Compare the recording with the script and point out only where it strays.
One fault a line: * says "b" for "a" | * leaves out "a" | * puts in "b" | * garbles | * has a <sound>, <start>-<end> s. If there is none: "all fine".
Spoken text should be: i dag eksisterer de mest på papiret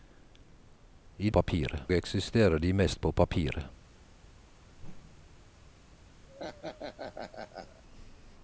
* says "papiret" for "dag"
* has a whoosh, 4.8-5.5 s
* has a laugh, 6.3-7.8 s